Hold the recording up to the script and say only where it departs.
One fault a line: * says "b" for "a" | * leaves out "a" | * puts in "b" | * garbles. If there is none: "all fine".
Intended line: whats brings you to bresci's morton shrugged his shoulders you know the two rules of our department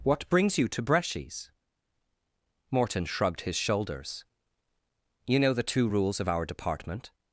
* says "what" for "whats"